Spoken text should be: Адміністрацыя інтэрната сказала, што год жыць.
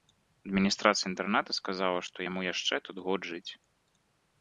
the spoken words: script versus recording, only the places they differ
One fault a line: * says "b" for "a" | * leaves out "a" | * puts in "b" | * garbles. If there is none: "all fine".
* puts in "яму яшчэ тут"